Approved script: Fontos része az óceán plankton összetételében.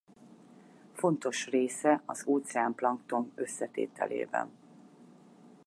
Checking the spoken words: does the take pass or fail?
pass